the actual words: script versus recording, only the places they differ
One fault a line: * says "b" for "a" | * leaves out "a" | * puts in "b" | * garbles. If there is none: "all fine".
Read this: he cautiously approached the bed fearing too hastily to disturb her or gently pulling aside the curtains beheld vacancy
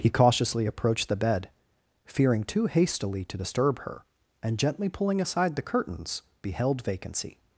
* says "and" for "or"